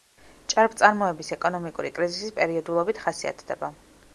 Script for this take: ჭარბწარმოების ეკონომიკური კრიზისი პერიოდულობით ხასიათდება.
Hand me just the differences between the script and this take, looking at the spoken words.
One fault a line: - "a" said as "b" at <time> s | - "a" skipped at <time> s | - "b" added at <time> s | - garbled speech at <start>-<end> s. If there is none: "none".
none